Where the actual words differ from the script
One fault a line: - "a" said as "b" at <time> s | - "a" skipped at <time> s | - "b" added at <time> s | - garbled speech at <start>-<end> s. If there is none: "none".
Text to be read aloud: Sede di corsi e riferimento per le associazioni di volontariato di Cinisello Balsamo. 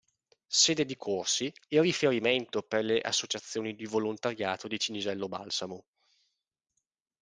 none